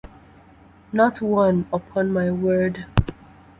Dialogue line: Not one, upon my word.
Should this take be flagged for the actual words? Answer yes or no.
no